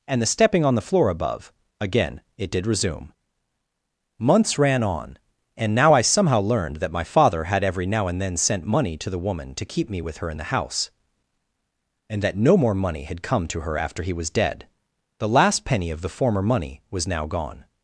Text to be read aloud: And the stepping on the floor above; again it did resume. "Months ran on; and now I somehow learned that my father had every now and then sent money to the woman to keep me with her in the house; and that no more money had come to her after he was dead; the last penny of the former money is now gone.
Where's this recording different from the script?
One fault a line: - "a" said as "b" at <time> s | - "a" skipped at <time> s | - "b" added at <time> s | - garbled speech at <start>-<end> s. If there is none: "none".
- "is" said as "was" at 16.9 s